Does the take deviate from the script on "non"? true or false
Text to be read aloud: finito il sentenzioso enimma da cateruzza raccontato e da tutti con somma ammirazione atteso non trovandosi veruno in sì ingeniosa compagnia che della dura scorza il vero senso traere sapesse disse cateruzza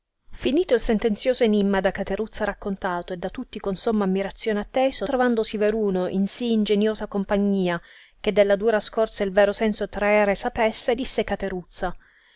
true